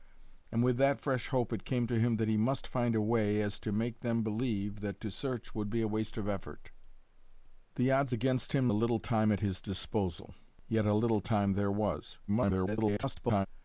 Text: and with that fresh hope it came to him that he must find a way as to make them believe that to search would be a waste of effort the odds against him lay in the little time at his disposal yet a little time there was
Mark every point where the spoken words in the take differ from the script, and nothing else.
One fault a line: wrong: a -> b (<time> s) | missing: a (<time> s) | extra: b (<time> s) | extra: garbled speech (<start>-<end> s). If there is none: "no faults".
missing: lay in (8.7 s)
extra: garbled speech (12.3-13.5 s)